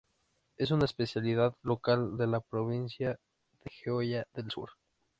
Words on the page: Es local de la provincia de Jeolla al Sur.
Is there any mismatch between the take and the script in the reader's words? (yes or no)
yes